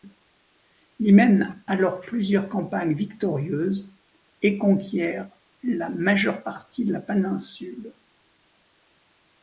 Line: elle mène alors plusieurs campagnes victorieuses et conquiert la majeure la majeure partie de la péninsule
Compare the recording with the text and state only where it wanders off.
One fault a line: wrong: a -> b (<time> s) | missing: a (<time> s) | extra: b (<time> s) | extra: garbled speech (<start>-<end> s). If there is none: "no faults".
wrong: elle -> il (1.0 s)
missing: la majeure (6.4 s)